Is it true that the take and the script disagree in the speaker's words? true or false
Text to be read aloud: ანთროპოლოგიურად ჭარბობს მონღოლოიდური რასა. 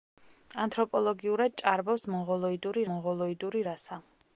true